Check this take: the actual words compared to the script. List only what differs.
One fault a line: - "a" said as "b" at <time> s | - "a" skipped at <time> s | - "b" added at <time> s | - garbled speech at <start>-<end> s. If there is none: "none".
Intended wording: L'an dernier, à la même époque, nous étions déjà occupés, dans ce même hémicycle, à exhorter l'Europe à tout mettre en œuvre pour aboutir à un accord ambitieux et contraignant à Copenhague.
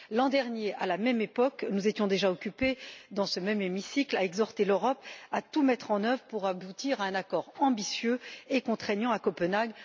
none